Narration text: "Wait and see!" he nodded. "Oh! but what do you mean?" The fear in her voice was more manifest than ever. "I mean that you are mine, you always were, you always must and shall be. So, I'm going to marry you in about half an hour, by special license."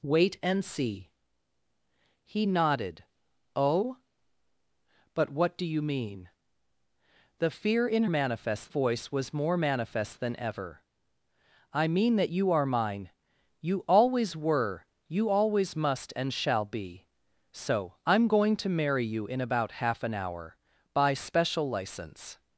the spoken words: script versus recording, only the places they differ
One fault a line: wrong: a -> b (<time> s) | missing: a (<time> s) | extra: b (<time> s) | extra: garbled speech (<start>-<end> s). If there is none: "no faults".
wrong: her -> manifest (8.1 s)